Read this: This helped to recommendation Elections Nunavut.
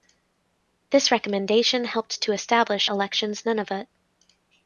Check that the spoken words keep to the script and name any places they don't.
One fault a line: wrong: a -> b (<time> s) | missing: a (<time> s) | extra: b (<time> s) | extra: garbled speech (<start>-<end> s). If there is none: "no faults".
extra: recommendation (1.1 s)
wrong: recommendation -> establish (2.3 s)